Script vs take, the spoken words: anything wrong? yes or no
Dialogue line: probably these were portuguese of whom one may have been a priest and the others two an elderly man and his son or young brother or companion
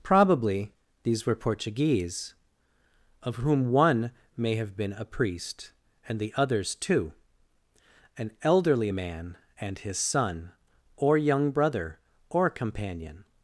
no